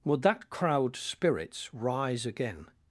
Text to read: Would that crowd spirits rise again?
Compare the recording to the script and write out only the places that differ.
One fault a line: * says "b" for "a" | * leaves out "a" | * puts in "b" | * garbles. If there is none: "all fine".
all fine